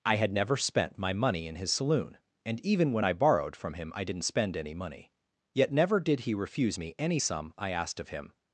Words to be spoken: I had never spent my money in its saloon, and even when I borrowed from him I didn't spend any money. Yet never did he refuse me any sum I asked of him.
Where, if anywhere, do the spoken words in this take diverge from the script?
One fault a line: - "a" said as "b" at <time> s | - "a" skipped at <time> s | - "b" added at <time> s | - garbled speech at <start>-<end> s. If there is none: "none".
- "its" said as "his" at 1.6 s